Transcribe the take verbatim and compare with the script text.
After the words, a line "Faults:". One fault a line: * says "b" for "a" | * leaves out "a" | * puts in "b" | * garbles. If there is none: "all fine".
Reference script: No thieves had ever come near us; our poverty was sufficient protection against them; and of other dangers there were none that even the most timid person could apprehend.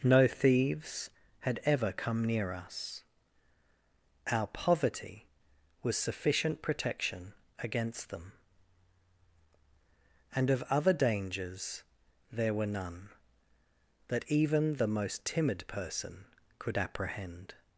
No thieves had ever come near us; our poverty was sufficient protection against them; and of other dangers there were none that even the most timid person could apprehend.
Faults:
all fine